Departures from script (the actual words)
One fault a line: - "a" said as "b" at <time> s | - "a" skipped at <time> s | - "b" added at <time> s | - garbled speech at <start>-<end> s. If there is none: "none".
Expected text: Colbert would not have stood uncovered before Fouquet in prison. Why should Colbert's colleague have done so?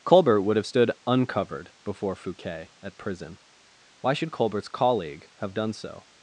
- "not" skipped at 0.6 s
- "in" said as "at" at 2.8 s